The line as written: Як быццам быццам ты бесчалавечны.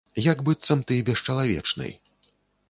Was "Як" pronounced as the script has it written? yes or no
yes